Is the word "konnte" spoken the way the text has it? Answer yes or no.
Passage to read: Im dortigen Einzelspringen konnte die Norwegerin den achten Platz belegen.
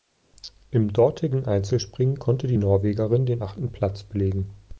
yes